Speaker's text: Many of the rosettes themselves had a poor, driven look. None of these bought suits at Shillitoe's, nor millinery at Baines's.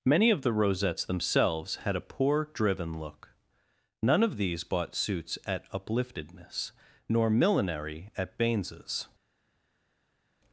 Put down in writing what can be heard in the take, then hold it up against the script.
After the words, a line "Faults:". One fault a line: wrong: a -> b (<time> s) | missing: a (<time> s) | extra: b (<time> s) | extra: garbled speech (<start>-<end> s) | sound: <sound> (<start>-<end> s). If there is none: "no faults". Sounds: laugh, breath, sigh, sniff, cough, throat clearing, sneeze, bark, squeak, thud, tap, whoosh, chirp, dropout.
Many of the rosettes themselves had a poor, driven look. None of these bought suits at Upliftedness, nor millinery at Baines's.
Faults:
wrong: Shillitoe's -> Upliftedness (5.7 s)